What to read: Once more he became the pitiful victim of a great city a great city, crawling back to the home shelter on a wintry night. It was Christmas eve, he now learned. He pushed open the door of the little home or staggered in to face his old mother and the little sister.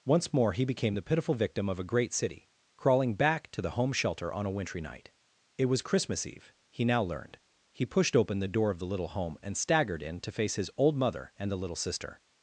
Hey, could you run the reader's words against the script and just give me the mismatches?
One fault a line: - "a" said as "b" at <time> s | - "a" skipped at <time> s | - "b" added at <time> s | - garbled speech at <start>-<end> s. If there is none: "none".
- "a great city" skipped at 2.5 s
- "or" said as "and" at 9.4 s